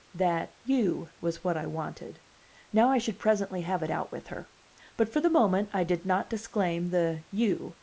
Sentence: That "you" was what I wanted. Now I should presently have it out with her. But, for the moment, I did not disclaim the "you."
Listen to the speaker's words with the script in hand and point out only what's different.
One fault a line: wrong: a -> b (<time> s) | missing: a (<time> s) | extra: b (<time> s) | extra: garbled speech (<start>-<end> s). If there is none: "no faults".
no faults